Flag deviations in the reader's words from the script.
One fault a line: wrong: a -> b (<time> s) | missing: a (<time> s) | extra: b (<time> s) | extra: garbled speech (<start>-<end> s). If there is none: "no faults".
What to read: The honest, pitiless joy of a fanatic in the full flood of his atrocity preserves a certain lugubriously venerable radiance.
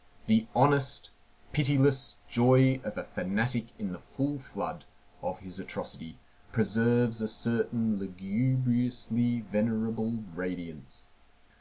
no faults